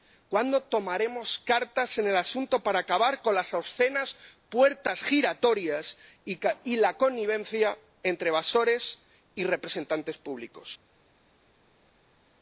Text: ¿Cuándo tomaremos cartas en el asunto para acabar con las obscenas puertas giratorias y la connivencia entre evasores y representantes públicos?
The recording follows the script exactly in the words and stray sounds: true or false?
true